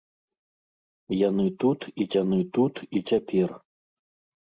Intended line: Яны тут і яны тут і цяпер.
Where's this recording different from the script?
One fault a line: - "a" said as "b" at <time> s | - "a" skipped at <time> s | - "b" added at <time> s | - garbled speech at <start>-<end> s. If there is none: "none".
none